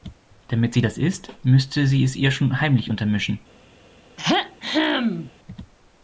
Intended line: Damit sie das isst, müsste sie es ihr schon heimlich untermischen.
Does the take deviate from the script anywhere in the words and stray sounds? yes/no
yes